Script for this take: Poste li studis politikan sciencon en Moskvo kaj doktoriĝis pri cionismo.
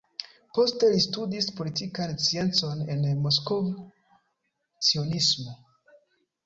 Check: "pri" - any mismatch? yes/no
yes